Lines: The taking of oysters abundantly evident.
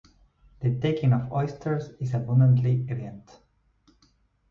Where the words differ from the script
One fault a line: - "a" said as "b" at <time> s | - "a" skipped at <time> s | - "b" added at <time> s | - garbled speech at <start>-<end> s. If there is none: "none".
- "is" added at 2.0 s